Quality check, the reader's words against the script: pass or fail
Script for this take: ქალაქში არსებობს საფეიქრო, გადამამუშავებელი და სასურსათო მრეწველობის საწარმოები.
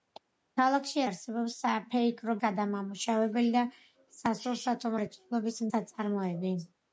pass